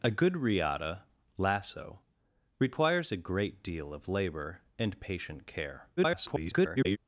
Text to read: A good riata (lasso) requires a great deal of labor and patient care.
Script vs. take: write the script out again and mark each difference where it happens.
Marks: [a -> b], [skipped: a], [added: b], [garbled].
A good riata (lasso) requires a great deal of labor and patient care. [garbled]